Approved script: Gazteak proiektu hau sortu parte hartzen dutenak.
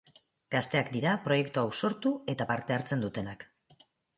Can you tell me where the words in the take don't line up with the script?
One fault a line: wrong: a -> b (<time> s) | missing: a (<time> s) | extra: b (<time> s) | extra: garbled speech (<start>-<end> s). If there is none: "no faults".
extra: dira (0.9 s)
extra: eta (2.4 s)